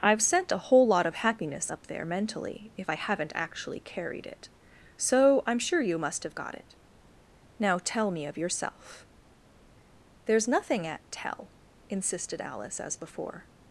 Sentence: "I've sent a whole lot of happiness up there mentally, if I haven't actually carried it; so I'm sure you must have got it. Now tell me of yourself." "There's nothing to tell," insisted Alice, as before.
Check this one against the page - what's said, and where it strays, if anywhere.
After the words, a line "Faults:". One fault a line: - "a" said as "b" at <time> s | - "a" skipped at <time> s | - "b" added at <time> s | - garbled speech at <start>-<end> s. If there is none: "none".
"I've sent a whole lot of happiness up there mentally, if I haven't actually carried it; so I'm sure you must have got it. Now tell me of yourself." "There's nothing at tell," insisted Alice, as before.
Faults:
- "to" said as "at" at 10.8 s